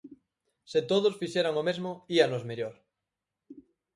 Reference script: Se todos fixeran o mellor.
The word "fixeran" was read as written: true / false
true